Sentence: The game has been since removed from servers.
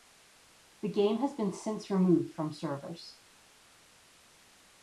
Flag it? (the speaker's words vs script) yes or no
no